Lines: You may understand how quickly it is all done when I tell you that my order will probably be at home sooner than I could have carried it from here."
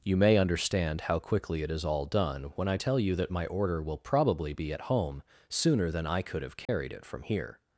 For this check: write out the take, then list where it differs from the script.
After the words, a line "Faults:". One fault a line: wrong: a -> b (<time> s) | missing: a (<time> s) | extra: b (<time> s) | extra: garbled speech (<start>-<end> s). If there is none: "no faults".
You may understand how quickly it is all done when I tell you that my order will probably be at home sooner than I could have carried it from here."
Faults:
no faults